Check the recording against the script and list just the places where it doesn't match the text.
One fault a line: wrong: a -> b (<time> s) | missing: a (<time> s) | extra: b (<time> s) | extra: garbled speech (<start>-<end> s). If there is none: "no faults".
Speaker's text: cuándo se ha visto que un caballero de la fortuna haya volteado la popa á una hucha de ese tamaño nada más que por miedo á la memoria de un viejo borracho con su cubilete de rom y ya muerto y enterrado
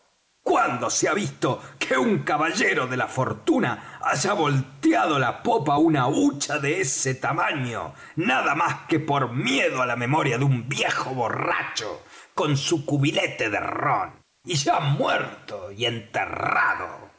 no faults